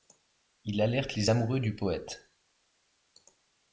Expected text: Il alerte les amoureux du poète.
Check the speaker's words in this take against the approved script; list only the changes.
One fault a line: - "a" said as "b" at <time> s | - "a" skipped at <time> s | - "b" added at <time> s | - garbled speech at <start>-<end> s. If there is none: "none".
none